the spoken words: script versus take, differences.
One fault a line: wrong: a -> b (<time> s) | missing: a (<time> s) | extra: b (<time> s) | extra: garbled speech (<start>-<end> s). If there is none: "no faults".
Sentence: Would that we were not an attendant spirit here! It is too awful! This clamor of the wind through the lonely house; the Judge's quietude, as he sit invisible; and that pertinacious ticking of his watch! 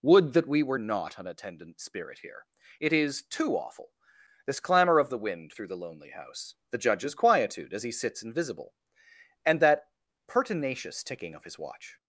wrong: sit -> sits (7.9 s)